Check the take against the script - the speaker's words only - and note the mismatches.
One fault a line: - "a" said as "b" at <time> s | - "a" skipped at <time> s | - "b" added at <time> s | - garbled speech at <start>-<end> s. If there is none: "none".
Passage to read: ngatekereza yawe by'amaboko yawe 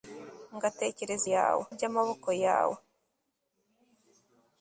none